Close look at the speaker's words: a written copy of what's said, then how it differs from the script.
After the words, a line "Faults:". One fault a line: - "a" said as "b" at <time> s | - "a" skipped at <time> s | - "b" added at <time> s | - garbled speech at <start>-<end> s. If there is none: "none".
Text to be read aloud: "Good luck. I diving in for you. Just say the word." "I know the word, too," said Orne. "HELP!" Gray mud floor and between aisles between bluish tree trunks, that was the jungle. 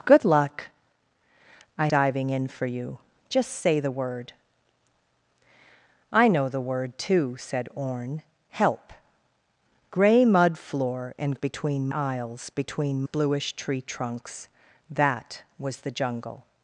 "Good luck. I diving in for you. Just say the word." "I know the word, too," said Orne. "HELP!" Gray mud floor and between aisles between bluish tree trunks, that was the jungle.
Faults:
none